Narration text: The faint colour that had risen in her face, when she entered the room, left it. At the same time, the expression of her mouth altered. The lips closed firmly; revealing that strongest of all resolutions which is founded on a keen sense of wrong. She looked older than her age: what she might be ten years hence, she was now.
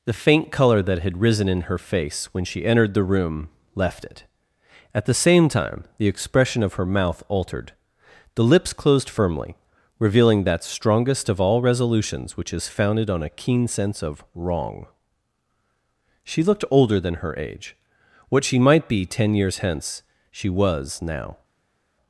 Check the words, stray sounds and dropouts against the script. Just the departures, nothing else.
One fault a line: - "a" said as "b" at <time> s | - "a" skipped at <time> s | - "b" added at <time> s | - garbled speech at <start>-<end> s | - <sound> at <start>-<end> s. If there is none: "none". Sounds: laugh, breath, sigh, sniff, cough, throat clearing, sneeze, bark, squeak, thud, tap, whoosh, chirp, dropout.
none